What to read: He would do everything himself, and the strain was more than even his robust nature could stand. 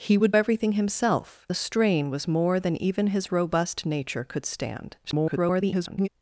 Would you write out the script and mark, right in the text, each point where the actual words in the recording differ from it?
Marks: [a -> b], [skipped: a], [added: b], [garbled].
He would [skipped: do] everything himself, [skipped: and] the strain was more than even his robust nature could stand. [garbled]